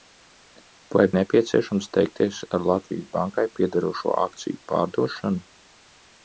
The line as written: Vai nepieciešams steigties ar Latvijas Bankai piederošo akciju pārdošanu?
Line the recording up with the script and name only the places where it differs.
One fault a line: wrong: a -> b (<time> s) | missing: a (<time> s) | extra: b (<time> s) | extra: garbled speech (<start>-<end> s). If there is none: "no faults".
no faults